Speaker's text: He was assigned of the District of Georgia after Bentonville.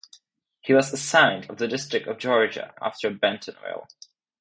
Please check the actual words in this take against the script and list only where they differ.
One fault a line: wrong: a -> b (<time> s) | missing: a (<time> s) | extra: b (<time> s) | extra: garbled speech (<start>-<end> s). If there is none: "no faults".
no faults